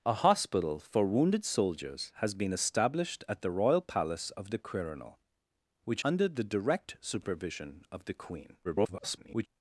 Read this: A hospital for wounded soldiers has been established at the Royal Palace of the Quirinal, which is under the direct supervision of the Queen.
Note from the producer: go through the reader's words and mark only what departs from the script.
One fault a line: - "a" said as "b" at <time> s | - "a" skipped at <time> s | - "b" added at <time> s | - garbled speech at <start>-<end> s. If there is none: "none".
- "is" skipped at 6.0 s
- garbled speech at 8.6-9.5 s